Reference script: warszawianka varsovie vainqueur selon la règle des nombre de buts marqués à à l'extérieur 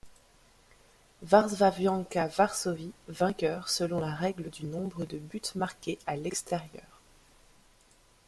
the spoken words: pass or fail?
fail